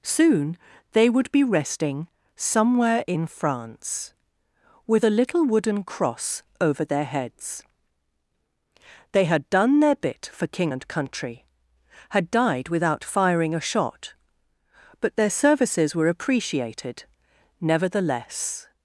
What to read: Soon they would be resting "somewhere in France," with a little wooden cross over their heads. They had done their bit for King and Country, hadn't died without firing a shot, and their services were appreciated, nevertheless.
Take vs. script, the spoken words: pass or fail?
fail